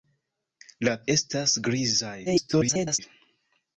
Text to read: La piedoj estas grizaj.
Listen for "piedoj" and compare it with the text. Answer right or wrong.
wrong